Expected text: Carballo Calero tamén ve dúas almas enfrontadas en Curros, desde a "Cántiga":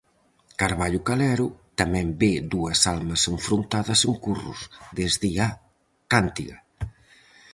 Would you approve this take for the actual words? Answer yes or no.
yes